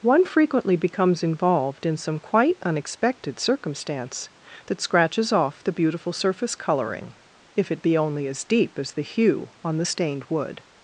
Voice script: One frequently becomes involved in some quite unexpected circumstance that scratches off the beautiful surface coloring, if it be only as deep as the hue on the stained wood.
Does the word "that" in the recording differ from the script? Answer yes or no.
no